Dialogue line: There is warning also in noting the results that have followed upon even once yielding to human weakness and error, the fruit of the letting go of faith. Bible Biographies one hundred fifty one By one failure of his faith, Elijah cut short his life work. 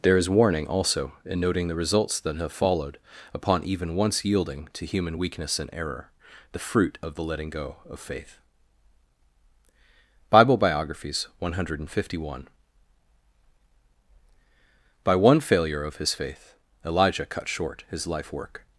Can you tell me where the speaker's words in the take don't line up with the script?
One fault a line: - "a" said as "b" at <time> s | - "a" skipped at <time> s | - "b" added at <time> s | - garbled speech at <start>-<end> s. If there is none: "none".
none